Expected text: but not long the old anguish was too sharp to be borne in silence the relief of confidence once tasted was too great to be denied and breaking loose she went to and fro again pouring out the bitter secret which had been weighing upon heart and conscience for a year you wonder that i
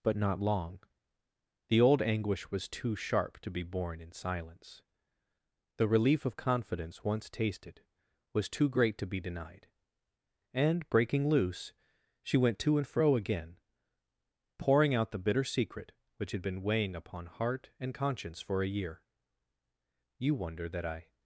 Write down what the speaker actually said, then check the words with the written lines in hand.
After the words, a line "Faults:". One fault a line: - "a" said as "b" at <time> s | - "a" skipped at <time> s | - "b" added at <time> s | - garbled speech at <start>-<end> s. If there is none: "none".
but not long the old anguish was too sharp to be borne in silence the relief of confidence once tasted was too great to be denied and breaking loose she went to and fro again pouring out the bitter secret which had been weighing upon heart and conscience for a year you wonder that i
Faults:
none